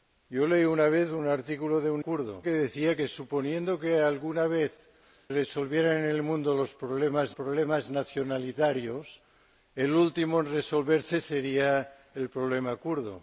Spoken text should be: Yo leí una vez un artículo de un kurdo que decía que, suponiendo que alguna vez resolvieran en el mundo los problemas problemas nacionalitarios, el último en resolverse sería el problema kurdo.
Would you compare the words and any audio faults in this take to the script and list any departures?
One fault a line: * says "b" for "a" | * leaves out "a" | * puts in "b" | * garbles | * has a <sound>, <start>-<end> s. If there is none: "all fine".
all fine